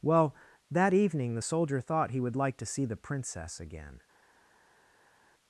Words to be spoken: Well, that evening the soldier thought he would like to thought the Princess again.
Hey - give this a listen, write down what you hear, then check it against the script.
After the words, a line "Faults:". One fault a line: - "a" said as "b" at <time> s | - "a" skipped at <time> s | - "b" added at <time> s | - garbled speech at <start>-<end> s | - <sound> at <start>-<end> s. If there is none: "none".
Well, that evening the soldier thought he would like to see the Princess again.
Faults:
- "thought" said as "see" at 2.7 s